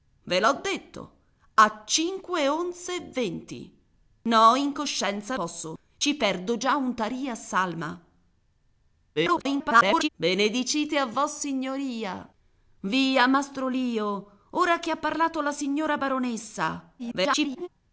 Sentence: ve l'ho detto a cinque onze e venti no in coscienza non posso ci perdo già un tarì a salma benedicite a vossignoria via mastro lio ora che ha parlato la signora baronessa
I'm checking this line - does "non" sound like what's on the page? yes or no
no